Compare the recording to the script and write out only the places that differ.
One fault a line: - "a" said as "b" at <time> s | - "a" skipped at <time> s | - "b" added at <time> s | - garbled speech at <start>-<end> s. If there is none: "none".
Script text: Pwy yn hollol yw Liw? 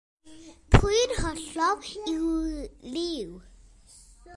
none